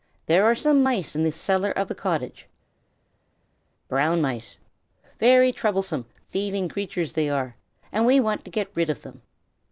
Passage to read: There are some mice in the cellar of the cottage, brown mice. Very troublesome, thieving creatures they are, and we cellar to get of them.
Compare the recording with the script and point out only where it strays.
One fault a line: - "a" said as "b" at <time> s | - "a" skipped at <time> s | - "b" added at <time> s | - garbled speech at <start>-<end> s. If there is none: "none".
- "cellar" said as "want" at 8.2 s
- "rid" added at 8.7 s